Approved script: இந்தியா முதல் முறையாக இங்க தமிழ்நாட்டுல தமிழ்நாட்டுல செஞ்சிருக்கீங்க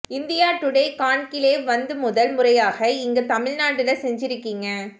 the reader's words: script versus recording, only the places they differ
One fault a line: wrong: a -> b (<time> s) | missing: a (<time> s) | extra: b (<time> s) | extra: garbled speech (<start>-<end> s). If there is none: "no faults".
extra: டுடே கான்கிலேவ் வந்து (0.6 s)
missing: தமிழ்நாட்டுல (3.9 s)